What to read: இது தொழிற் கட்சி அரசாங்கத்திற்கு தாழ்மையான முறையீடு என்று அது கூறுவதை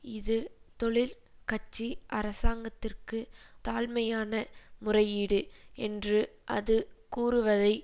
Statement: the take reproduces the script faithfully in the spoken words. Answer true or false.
true